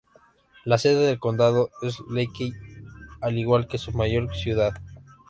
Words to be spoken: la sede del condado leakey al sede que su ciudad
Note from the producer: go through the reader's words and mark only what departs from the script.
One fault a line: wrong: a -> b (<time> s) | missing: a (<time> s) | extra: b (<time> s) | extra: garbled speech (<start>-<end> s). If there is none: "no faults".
extra: es (1.8 s)
wrong: sede -> igual (3.4 s)
extra: mayor (3.9 s)